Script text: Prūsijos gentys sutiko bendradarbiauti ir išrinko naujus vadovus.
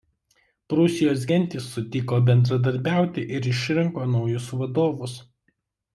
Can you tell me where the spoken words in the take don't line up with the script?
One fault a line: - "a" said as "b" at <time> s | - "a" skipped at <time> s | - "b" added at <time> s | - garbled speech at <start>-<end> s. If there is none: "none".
none